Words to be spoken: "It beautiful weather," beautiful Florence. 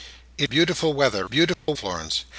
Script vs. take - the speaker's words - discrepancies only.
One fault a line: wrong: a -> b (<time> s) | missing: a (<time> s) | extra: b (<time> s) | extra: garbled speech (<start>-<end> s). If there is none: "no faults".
no faults